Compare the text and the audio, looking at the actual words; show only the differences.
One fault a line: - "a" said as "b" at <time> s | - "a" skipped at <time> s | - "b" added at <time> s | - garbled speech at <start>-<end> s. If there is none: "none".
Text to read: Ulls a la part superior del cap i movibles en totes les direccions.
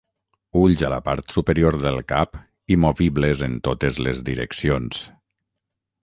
none